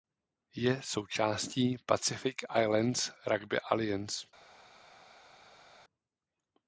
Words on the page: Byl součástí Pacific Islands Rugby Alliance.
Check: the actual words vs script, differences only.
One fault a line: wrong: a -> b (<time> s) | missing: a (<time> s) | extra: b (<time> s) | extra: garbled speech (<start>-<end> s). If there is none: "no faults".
wrong: Byl -> Je (0.6 s)